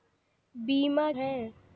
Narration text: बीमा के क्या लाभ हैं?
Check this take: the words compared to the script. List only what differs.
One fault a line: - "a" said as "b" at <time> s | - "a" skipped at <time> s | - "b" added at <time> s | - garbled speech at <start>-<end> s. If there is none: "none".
- "के क्या लाभ" skipped at 1.1 s